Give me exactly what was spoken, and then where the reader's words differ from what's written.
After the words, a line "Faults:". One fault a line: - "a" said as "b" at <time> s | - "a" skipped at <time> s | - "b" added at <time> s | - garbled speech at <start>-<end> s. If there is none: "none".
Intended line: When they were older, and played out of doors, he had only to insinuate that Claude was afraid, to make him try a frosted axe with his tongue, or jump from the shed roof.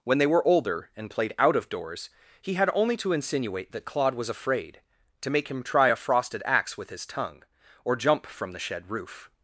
When they were older, and played out of doors, he had only to insinuate that Claude was afraid, to make him try a frosted axe with his tongue, or jump from the shed roof.
Faults:
none